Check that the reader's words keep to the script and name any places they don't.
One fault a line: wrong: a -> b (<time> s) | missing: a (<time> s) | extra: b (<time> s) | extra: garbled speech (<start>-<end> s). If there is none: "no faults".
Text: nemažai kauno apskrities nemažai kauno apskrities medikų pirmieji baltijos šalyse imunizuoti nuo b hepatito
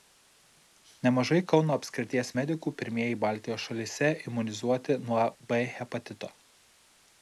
missing: nemažai kauno apskrities (2.3 s)